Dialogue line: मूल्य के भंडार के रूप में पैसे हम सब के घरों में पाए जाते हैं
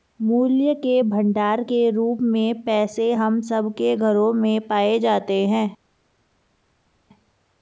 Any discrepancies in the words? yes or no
no